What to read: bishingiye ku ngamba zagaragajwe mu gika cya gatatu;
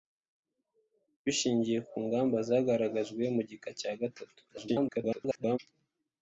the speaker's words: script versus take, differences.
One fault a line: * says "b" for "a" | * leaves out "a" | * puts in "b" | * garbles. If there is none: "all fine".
* garbles